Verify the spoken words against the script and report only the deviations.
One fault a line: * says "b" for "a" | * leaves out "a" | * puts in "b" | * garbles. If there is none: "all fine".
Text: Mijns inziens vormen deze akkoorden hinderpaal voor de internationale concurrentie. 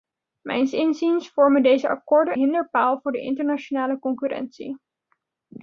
all fine